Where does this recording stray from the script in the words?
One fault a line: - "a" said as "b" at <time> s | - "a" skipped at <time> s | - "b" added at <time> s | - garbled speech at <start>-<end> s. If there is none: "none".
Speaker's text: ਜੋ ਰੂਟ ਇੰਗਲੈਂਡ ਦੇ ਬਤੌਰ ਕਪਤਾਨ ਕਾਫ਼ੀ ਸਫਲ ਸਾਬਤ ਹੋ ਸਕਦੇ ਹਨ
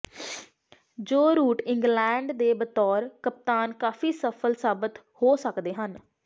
none